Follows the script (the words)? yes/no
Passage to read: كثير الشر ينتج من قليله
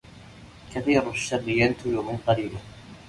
yes